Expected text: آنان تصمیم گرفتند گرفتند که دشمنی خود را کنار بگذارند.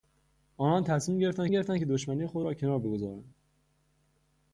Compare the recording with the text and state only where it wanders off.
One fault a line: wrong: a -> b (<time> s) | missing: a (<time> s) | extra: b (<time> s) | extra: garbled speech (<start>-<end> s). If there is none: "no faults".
no faults